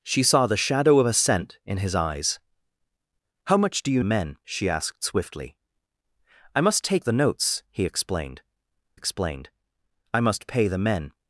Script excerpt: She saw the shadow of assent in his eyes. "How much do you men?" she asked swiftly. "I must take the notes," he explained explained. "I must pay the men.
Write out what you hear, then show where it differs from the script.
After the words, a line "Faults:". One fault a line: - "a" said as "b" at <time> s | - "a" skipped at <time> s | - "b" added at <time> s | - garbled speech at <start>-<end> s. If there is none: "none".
She saw the shadow of assent in his eyes. "How much do you men?" she asked swiftly. "I must take the notes," he explained explained. "I must pay the men.
Faults:
none